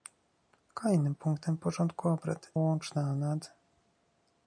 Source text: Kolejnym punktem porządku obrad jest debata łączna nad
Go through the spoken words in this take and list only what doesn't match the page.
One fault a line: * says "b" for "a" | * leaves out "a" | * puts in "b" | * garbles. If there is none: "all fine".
* leaves out "jest debata"